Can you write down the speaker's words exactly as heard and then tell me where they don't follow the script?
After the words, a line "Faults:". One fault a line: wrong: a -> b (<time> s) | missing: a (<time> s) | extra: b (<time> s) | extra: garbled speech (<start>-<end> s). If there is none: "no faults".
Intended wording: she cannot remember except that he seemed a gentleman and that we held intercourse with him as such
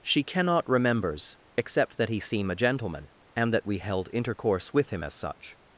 she cannot remembers except that he seem a gentleman and that we held intercourse with him as such
Faults:
wrong: remember -> remembers (0.7 s)
wrong: seemed -> seem (2.2 s)